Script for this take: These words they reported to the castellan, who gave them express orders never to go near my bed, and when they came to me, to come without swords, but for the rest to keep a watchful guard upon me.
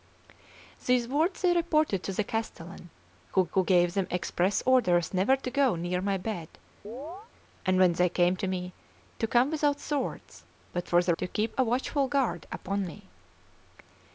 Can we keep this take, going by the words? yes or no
no